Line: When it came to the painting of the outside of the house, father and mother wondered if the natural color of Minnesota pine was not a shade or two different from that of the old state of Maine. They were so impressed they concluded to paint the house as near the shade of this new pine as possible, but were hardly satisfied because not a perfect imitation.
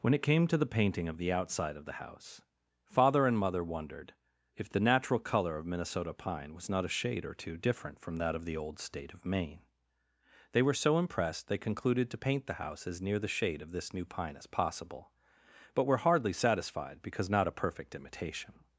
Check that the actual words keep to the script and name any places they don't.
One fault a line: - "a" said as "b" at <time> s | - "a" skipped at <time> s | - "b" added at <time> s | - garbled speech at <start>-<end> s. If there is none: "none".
none